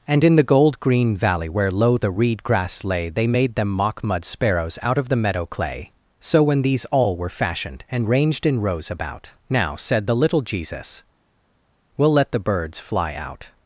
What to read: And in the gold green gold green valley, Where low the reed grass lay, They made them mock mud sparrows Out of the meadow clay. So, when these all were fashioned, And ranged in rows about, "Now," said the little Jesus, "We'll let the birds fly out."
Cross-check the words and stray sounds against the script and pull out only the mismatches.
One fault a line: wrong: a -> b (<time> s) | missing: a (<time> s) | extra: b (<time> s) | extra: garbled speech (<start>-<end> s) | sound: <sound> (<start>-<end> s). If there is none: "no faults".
missing: gold green (1.1 s)